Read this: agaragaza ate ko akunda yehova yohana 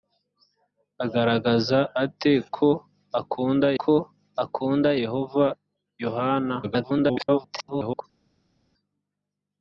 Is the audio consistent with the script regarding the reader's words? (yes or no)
no